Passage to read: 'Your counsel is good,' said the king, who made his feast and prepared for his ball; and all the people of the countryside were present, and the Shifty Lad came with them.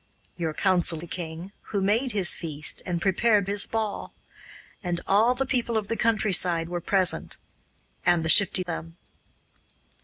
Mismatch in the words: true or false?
true